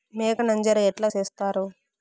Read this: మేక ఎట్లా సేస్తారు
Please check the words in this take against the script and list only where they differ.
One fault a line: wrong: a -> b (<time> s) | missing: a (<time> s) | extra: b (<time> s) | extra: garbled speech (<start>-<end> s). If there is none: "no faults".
extra: నంజర (0.4 s)